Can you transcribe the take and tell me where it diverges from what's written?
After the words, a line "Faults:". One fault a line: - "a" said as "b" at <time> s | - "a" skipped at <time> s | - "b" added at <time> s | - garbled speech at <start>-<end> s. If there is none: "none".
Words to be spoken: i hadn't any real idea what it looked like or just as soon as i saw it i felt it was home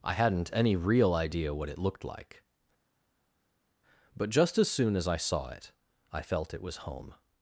i hadn't any real idea what it looked like but just as soon as i saw it i felt it was home
Faults:
- "or" said as "but" at 4.2 s